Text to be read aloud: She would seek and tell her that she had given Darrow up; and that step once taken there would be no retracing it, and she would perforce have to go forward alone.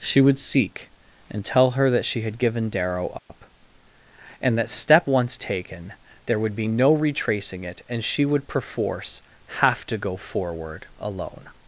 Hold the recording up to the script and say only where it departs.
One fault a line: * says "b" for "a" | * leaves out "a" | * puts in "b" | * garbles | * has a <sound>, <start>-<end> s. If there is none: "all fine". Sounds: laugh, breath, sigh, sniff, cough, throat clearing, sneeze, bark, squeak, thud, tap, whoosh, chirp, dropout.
* has a dropout, 3.2-3.3 s